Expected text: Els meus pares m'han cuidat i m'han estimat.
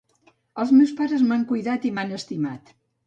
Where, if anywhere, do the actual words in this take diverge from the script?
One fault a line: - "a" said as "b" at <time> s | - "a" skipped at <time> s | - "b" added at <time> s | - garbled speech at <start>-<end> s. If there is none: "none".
none